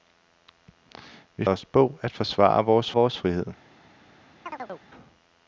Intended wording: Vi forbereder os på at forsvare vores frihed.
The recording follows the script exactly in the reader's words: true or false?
false